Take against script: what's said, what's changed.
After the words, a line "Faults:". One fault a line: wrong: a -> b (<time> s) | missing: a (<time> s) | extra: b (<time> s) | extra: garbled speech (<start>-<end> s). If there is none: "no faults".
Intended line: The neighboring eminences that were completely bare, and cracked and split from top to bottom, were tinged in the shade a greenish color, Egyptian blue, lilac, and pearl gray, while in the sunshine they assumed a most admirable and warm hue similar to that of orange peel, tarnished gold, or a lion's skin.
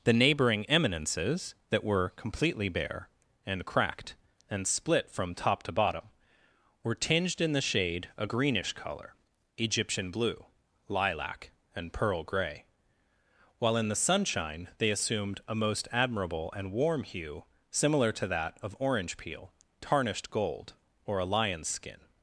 The neighboring eminences that were completely bare, and cracked and split from top to bottom, were tinged in the shade a greenish color, Egyptian blue, lilac, and pearl gray, while in the sunshine they assumed a most admirable and warm hue similar to that of orange peel, tarnished gold, or a lion's skin.
Faults:
no faults